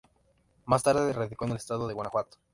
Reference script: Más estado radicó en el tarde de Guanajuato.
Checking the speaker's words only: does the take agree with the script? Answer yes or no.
no